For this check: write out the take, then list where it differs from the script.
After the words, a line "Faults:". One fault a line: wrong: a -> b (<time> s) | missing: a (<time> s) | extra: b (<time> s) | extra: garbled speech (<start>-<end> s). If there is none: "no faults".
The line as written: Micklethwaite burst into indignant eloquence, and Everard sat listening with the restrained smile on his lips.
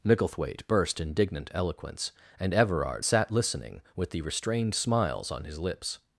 Micklethwaite burst indignant eloquence, and Everard sat listening with the restrained smiles on his lips.
Faults:
missing: into (1.0 s)
wrong: smile -> smiles (4.7 s)